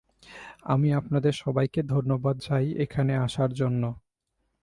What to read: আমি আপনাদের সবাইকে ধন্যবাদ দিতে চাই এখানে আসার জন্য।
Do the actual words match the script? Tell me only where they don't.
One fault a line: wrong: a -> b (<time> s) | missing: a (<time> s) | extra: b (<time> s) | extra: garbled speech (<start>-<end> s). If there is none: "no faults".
missing: দিতে (2.4 s)